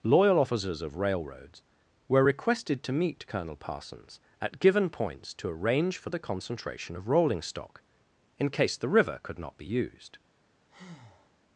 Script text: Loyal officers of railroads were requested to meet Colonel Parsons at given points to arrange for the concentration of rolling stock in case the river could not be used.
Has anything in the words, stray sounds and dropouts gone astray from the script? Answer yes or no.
yes